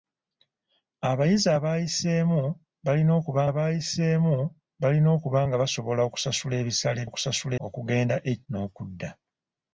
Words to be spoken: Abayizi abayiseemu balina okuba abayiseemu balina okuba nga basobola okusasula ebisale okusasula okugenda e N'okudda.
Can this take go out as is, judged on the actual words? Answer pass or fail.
pass